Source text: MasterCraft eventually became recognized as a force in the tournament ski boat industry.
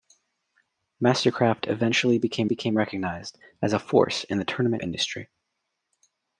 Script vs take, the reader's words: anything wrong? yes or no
yes